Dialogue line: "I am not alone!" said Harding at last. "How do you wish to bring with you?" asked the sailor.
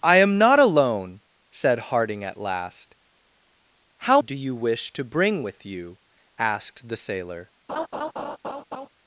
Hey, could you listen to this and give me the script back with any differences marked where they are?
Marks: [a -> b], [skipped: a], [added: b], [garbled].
"I am not alone!" said Harding at last. "How do you wish to bring with you?" asked the sailor.